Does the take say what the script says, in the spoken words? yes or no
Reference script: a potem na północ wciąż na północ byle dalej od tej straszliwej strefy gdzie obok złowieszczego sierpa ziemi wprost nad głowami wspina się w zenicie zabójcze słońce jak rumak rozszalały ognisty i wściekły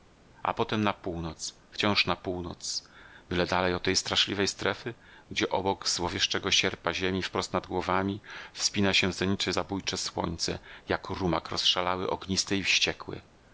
yes